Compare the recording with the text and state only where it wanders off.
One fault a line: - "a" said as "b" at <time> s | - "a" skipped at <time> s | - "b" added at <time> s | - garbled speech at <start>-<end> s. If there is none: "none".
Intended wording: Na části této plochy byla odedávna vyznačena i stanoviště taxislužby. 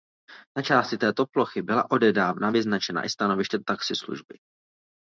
none